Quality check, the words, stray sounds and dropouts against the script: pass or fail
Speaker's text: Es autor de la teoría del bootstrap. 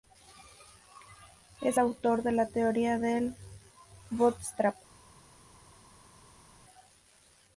pass